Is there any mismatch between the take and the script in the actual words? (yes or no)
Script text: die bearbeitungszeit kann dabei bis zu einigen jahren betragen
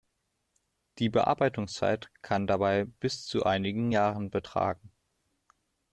no